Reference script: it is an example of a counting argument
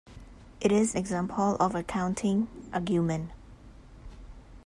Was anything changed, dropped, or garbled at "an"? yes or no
yes